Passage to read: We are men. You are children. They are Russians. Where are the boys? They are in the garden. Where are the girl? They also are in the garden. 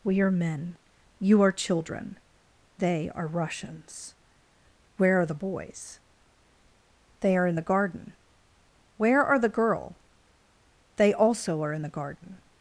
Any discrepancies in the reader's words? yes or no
no